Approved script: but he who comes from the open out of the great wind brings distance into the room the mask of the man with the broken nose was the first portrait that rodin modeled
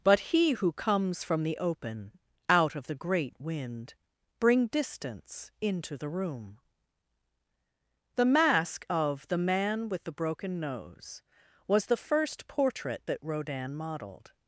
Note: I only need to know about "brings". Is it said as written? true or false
false